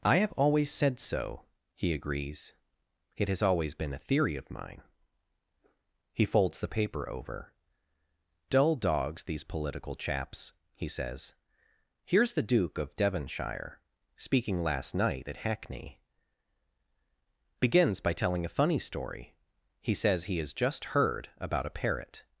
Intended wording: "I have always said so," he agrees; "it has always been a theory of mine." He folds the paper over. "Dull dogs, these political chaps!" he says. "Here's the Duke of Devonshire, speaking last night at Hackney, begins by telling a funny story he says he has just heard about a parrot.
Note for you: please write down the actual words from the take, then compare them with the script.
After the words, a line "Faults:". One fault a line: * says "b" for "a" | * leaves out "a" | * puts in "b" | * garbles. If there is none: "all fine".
"I have always said so," he agrees; "it has always been a theory of mine." He folds the paper over. "Dull dogs, these political chaps!" he says. "Here's the Duke of Devonshire, speaking last night at Hackney, begins by telling a funny story he says he has just heard about a parrot.
Faults:
all fine